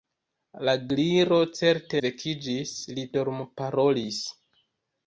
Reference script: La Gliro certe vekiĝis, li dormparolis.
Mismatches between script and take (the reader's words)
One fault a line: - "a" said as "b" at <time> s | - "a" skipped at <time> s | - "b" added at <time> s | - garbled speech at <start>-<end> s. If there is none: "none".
none